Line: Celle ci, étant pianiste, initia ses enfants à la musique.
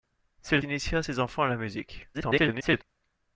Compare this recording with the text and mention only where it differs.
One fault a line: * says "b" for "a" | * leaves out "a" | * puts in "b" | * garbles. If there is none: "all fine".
* leaves out "ci étant pianiste"
* garbles